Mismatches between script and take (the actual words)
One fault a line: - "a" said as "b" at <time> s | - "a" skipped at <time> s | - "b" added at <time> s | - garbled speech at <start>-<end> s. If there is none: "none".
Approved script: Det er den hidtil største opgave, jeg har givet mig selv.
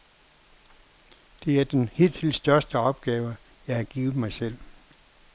none